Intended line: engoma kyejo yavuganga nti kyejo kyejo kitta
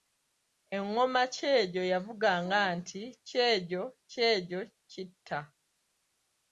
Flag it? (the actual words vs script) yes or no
no